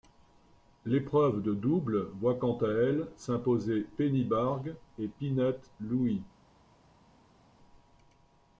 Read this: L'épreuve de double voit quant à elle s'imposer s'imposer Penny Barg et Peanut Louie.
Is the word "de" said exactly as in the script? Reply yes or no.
yes